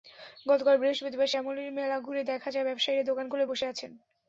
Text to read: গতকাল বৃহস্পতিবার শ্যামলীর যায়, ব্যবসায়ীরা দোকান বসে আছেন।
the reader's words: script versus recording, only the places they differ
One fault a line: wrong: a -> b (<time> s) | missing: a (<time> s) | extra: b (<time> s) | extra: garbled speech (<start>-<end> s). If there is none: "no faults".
extra: মেলা ঘুরে দেখা (1.7 s)
extra: খুলে (3.3 s)